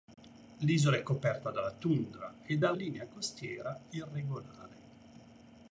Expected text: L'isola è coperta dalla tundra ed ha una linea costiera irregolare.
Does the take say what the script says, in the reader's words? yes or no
no